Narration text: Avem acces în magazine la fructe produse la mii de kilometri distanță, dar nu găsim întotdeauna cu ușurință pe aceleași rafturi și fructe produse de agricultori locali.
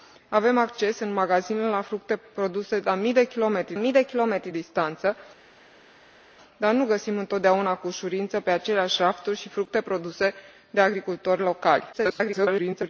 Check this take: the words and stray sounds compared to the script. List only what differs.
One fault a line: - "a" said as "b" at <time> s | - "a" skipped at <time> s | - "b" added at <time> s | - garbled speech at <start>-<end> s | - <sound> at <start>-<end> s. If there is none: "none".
- "mii de kilometri" added at 3.8 s
- garbled speech at 11.9-12.9 s